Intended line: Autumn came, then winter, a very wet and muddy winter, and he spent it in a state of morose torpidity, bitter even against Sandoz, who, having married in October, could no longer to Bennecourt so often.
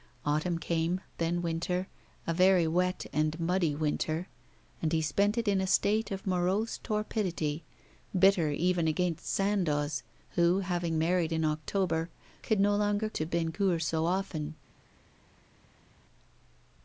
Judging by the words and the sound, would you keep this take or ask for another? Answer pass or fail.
pass